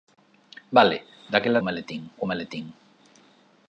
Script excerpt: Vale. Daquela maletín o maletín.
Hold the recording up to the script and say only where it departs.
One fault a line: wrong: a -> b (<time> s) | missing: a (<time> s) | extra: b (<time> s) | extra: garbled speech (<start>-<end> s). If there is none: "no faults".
no faults